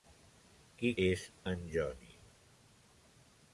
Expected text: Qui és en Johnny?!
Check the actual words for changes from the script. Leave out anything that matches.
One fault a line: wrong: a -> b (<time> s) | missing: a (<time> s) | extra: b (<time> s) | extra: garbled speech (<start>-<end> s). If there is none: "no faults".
no faults